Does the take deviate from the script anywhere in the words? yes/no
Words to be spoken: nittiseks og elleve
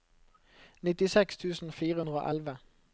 yes